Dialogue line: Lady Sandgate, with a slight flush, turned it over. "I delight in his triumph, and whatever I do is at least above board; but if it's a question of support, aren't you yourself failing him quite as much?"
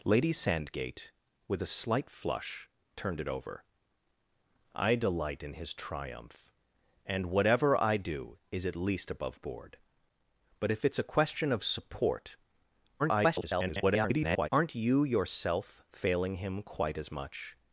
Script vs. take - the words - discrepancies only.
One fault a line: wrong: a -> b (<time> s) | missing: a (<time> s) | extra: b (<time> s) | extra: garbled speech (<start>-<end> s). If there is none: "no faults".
extra: garbled speech (13.0-14.5 s)